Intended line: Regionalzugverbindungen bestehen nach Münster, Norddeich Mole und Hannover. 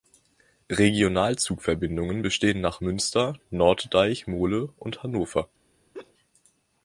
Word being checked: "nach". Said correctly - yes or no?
yes